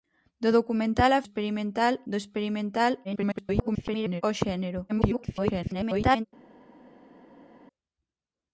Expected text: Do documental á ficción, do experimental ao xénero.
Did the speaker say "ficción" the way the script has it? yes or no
no